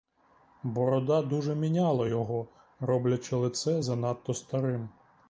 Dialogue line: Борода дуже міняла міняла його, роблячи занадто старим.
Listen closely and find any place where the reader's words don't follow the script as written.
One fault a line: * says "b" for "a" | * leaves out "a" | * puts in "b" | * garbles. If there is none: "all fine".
* leaves out "міняла"
* puts in "лице"